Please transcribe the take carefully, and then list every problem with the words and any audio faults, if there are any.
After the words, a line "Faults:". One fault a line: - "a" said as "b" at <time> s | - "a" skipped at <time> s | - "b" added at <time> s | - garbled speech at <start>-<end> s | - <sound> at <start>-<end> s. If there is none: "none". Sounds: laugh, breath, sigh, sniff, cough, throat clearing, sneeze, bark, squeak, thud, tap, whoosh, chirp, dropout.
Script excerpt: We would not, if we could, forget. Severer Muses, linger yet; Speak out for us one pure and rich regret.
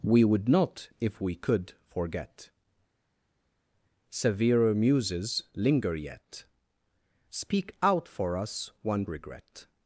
We would not, if we could, forget. Severer Muses, linger yet; Speak out for us one regret.
Faults:
- "pure and rich" skipped at 9.0 s